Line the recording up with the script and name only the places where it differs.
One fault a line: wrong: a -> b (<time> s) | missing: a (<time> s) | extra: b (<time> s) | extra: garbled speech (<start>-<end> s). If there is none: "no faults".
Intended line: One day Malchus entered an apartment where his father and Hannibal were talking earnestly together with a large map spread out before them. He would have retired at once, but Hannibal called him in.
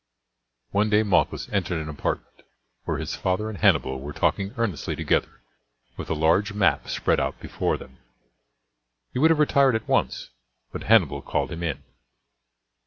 no faults